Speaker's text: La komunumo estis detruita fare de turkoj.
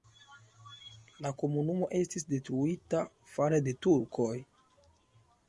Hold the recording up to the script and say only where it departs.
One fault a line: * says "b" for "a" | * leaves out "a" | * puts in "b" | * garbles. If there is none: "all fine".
all fine